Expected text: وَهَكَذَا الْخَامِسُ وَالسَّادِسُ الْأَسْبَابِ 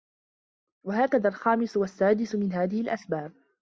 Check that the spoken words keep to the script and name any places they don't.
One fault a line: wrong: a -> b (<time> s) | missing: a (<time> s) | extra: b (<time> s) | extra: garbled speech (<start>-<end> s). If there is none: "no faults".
extra: مِنْ هَذِهِ (2.4 s)